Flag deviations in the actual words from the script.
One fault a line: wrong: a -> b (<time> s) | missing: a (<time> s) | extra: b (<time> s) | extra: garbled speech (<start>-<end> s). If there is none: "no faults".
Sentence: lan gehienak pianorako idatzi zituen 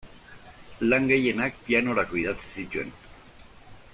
no faults